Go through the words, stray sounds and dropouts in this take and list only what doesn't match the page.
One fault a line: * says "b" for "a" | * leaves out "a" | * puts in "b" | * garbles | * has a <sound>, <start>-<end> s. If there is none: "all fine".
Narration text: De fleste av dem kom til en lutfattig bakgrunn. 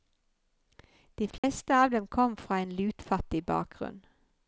* has a dropout, 1.4-1.4 s
* says "fra" for "til"